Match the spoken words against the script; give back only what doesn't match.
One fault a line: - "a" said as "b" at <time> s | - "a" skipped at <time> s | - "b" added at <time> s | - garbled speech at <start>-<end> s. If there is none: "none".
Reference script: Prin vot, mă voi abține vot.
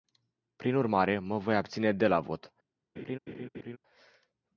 - "vot" said as "urmare" at 0.8 s
- "de la" added at 1.9 s